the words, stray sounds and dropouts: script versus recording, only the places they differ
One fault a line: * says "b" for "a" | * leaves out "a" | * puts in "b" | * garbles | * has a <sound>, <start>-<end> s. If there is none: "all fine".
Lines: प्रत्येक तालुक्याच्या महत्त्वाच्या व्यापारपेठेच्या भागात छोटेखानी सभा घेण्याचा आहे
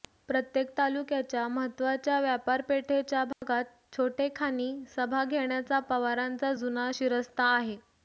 * has a dropout, 3.3-3.4 s
* puts in "पवारांचा जुना शिरस्ता"